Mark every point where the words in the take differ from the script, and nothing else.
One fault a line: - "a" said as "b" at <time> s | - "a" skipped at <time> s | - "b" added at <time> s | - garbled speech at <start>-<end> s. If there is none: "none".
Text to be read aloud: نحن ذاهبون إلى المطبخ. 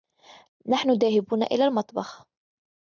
none